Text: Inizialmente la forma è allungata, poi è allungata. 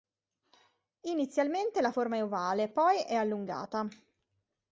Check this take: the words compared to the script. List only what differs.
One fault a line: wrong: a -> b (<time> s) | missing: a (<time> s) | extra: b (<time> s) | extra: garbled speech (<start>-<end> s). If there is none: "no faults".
wrong: allungata -> ovale (2.2 s)